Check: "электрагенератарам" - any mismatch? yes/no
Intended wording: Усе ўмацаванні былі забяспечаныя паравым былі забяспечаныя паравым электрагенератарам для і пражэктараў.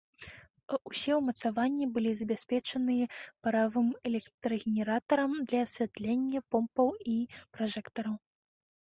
yes